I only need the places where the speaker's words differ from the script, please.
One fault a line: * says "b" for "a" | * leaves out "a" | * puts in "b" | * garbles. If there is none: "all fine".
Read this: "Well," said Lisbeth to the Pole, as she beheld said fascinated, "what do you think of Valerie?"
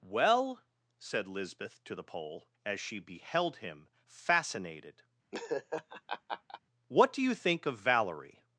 * says "him" for "said"